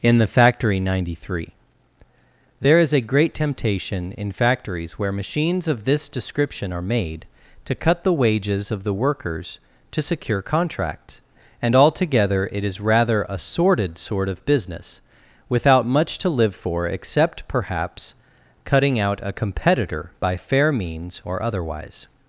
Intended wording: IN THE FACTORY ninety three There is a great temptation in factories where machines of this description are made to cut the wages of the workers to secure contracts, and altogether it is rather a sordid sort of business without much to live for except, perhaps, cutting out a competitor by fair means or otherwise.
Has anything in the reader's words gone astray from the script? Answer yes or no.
no